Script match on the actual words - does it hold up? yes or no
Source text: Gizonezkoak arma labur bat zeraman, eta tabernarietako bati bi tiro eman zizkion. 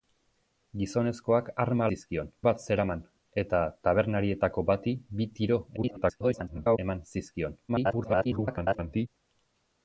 no